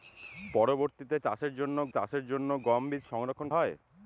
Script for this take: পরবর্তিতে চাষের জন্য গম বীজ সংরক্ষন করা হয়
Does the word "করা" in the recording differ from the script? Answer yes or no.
yes